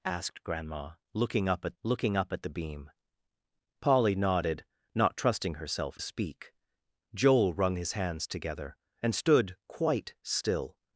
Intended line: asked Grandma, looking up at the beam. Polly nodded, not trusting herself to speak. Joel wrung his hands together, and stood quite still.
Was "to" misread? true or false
true